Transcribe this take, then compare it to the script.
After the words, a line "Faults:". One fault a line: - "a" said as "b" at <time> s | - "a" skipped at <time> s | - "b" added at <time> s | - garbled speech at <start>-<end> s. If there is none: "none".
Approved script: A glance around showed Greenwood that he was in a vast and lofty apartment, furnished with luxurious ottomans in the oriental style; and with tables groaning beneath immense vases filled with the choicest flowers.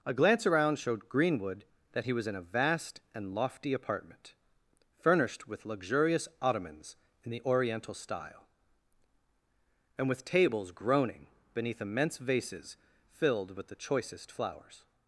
A glance around showed Greenwood that he was in a vast and lofty apartment, furnished with luxurious ottomans in the oriental style; and with tables groaning beneath immense vases filled with the choicest flowers.
Faults:
none